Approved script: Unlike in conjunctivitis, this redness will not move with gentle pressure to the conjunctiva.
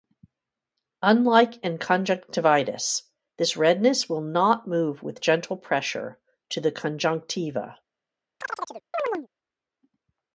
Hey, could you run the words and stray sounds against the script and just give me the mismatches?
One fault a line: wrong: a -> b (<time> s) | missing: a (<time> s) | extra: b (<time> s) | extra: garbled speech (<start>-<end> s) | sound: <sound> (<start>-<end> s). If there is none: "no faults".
sound: chirp (8.4-9.3 s)